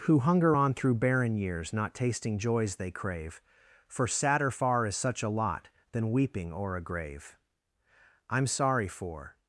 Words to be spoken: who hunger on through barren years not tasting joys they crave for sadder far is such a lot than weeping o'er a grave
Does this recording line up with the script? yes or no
no